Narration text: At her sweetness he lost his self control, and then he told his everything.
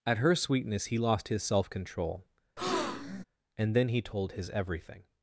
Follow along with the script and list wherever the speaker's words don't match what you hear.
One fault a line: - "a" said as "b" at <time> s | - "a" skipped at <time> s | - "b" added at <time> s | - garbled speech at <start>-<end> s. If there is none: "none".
none